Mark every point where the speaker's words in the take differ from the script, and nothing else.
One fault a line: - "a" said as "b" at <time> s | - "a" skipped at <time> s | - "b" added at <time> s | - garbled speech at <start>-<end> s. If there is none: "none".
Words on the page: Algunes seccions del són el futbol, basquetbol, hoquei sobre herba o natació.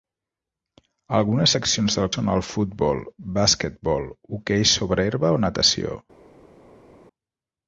none